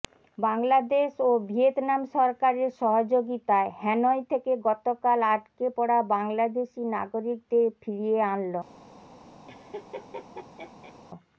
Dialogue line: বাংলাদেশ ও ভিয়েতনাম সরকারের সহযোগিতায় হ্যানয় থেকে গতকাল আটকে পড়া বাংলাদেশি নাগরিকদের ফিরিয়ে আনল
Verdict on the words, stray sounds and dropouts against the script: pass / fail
fail